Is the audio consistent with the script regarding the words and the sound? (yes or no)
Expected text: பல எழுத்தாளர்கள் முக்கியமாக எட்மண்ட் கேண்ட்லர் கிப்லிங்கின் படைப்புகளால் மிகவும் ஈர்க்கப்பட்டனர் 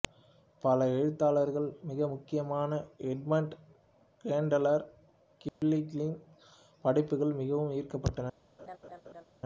no